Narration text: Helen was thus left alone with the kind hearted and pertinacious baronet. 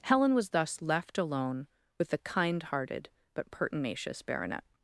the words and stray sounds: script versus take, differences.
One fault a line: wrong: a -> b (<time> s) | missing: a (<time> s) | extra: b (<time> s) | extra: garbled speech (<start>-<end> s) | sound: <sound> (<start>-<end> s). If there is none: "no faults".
wrong: and -> but (3.3 s)